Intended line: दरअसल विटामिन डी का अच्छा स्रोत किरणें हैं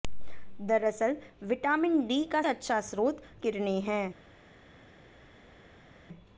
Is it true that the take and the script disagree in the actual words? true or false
false